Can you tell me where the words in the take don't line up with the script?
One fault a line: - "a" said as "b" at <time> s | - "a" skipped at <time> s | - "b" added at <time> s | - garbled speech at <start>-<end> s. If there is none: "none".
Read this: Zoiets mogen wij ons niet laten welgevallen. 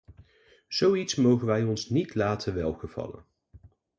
none